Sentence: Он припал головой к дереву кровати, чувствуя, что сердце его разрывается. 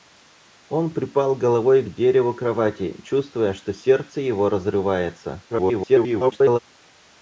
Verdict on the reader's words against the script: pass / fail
fail